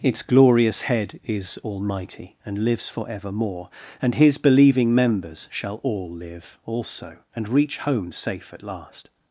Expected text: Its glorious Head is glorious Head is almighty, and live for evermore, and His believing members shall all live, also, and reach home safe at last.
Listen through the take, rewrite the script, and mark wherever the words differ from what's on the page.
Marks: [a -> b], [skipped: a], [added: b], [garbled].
Its glorious Head is [skipped: glorious Head is] almighty, and [live -> lives] for evermore, and His believing members shall all live, also, and reach home safe at last.